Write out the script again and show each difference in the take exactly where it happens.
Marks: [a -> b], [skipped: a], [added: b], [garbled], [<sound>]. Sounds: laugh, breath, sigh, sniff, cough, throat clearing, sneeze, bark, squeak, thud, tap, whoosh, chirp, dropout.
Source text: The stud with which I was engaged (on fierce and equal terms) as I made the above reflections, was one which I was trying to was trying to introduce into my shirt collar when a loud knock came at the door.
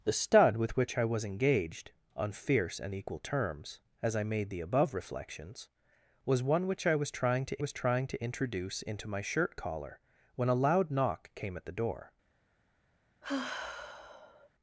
The stud with which I was engaged (on fierce and equal terms) as I made the above reflections, was one which I was trying to was trying to introduce into my shirt collar when a loud knock came at the door. [sigh]